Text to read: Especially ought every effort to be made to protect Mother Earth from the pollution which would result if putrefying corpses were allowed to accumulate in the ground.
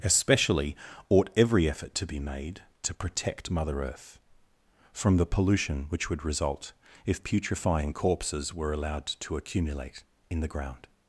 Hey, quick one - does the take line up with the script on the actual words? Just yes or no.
yes